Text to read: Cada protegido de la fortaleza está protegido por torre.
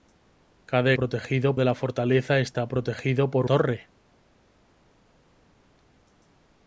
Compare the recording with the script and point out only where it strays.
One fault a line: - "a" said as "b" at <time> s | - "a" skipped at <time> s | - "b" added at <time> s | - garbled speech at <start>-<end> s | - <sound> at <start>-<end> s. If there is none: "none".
none